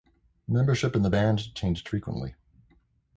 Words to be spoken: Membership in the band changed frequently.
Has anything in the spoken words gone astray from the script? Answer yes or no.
no